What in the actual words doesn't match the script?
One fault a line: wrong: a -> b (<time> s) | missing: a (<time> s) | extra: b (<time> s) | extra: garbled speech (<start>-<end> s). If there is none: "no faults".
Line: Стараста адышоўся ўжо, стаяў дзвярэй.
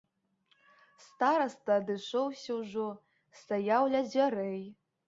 extra: ля (4.0 s)